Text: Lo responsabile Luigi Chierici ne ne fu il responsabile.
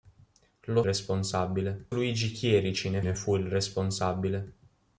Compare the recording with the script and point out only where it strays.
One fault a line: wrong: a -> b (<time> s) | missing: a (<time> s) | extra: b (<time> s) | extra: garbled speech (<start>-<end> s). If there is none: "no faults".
no faults